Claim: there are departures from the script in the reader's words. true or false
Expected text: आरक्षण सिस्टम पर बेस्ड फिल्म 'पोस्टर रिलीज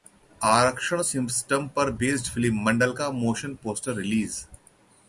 true